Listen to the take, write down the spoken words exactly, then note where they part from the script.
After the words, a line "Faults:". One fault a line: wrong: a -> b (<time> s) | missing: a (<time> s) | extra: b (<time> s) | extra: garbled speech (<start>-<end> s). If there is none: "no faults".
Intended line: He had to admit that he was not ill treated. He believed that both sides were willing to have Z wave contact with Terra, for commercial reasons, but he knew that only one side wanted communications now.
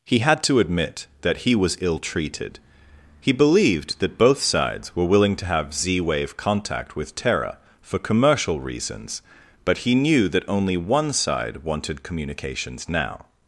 He had to admit that he was ill treated. He believed that both sides were willing to have Z wave contact with Terra, for commercial reasons, but he knew that only one side wanted communications now.
Faults:
missing: not (1.8 s)